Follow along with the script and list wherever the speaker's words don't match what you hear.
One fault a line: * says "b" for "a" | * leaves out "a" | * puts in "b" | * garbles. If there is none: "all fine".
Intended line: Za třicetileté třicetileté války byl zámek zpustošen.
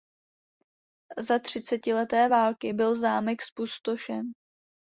* leaves out "třicetileté"